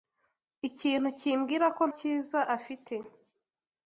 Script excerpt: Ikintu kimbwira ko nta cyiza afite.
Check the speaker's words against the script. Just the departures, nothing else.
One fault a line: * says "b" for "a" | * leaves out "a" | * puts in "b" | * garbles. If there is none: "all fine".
* leaves out "nta"